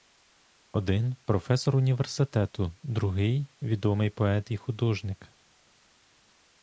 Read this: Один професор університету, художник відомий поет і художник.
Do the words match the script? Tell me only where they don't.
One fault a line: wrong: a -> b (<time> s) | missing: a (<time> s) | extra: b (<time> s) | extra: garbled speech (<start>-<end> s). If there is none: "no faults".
wrong: художник -> другий (2.8 s)